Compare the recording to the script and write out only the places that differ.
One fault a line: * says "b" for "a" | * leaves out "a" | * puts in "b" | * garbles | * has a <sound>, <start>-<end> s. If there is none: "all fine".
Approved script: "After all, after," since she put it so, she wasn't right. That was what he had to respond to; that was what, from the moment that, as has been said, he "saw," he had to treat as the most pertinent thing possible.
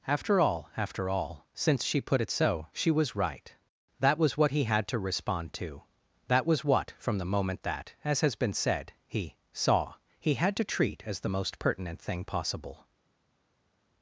* puts in "all"
* says "was" for "wasn't"